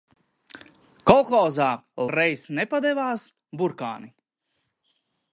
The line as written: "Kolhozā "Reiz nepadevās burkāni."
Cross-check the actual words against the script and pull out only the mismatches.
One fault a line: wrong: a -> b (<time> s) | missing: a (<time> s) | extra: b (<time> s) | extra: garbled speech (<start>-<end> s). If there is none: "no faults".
no faults